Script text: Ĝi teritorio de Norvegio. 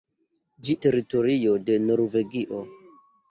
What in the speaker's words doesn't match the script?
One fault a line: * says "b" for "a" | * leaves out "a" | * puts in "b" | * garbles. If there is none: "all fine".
all fine